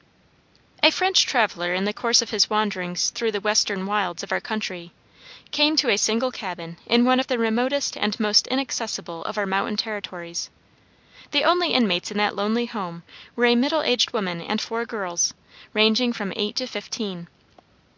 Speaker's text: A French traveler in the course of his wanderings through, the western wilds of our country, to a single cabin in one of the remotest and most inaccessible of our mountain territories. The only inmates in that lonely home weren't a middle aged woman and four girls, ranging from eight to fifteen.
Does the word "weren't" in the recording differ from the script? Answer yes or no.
yes